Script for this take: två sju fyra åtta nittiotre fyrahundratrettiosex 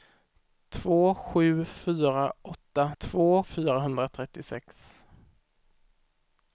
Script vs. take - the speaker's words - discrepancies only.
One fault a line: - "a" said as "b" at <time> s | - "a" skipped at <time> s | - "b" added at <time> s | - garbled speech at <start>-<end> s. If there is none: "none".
- "nittiotre" said as "två" at 3.0 s